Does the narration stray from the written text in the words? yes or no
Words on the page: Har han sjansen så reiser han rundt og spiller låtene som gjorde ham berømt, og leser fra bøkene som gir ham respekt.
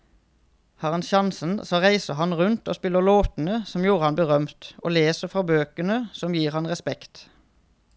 no